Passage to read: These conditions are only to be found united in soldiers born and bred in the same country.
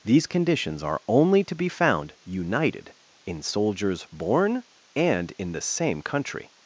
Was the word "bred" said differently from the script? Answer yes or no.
yes